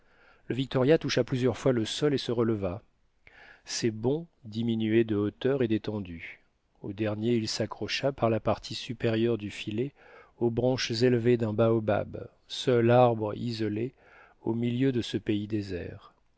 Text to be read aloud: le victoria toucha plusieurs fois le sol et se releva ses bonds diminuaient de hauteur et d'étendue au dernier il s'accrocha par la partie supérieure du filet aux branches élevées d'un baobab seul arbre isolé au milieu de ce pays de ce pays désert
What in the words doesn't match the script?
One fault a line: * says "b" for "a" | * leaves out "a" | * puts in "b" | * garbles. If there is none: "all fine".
* leaves out "de ce pays"